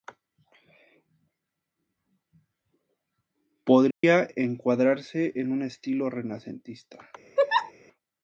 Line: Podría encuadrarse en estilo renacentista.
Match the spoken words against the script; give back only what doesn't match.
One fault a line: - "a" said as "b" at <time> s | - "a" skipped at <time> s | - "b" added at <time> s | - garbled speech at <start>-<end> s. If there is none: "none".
- "un" added at 5.5 s